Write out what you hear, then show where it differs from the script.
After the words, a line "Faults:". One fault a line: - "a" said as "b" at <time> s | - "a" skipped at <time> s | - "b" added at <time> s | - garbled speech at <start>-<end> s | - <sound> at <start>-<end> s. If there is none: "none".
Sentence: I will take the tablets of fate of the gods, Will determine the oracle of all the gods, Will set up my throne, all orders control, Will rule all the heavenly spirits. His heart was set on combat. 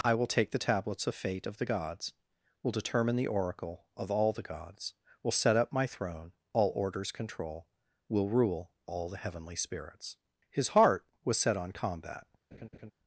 I will take the tablets of fate of the gods, Will determine the oracle of all the gods, Will set up my throne, all orders control, Will rule all the heavenly spirits. His heart was set on combat.
Faults:
- laugh at 12.5-12.9 s